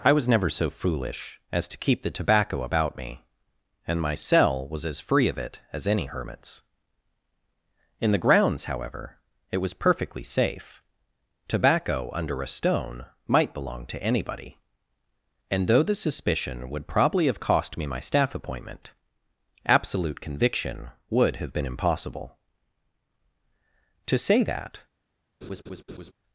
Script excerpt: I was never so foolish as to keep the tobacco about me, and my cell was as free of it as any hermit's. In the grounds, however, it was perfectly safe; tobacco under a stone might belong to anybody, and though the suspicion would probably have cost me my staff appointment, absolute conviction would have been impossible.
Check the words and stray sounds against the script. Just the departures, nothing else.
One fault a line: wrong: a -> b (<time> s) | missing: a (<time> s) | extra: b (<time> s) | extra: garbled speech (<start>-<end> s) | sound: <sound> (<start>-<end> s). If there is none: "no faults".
extra: To say that (24.1 s)
sound: laugh (25.4-26.1 s)